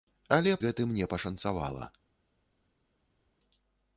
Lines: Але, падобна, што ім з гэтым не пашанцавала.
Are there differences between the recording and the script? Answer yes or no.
yes